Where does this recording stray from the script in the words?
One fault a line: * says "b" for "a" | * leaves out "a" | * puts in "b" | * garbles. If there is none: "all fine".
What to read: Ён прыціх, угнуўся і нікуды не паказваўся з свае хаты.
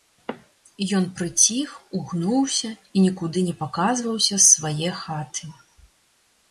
all fine